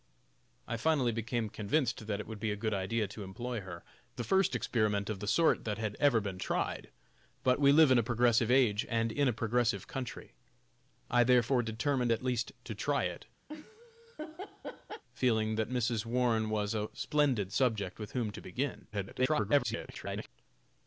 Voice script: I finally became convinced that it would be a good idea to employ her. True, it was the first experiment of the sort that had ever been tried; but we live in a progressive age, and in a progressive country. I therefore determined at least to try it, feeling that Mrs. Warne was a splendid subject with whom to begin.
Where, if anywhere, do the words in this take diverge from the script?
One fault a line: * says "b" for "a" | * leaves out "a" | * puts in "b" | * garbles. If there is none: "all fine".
* leaves out "True it was"
* garbles